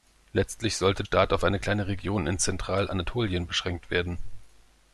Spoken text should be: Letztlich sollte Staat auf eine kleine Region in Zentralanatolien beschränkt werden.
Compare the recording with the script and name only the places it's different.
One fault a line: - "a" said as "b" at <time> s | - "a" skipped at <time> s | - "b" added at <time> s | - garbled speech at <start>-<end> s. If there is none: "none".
none